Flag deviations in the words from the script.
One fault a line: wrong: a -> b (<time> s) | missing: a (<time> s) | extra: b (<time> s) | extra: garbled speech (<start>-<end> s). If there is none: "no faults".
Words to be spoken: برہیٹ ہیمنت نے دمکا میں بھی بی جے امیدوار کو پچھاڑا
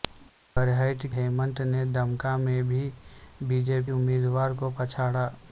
no faults